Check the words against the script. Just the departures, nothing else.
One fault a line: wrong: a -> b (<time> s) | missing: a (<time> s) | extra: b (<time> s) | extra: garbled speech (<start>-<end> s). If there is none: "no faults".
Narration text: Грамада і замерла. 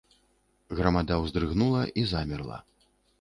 extra: ўздрыгнула (1.2 s)